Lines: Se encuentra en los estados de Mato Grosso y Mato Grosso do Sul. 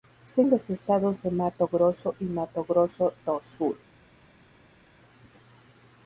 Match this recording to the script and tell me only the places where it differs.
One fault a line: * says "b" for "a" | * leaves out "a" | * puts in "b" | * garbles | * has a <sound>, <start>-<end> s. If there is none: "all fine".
* leaves out "encuentra"